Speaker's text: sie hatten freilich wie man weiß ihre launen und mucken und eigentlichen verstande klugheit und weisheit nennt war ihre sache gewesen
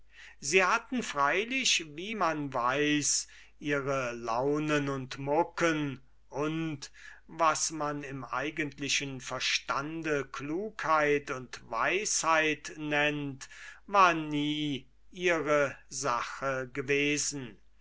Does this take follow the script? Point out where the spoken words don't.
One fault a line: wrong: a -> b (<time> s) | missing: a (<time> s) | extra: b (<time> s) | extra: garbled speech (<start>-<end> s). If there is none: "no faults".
extra: was man im (7.3 s)
extra: nie (14.1 s)